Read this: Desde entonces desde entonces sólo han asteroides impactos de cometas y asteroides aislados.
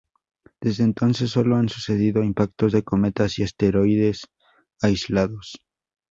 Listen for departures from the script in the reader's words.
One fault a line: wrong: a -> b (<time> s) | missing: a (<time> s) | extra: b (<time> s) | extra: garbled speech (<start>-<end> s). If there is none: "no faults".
missing: desde entonces (1.3 s)
wrong: asteroides -> sucedido (1.7 s)